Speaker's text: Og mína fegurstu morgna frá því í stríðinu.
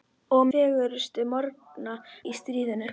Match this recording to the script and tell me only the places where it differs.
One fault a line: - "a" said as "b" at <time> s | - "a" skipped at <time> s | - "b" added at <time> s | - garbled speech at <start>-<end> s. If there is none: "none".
- "mína" skipped at 0.5 s
- "frá því" skipped at 2.0 s